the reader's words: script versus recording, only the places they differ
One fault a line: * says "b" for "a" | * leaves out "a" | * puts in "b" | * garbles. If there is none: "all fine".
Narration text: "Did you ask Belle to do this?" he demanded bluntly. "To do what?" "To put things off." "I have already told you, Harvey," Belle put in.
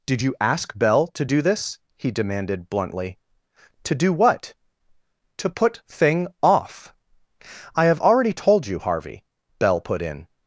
* says "thing" for "things"